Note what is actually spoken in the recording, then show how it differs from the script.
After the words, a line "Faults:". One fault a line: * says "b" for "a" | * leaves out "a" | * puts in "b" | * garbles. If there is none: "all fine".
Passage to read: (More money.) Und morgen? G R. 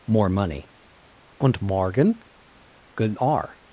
(More money.) Und morgen? Good R.
Faults:
* says "Good" for "G"